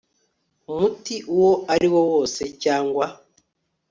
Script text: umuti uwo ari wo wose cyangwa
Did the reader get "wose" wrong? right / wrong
right